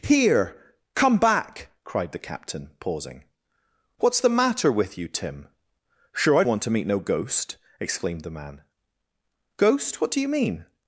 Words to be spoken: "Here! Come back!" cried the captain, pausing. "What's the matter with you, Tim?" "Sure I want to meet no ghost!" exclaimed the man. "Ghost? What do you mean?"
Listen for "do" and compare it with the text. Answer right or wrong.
right